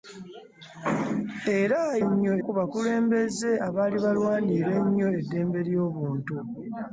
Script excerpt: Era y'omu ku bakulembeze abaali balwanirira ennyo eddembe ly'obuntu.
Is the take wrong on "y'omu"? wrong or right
wrong